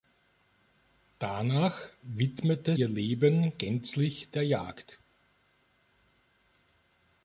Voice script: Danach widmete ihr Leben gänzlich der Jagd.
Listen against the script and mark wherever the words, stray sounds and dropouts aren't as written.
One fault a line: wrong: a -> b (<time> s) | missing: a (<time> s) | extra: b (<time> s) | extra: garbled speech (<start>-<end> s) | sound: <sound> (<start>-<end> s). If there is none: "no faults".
no faults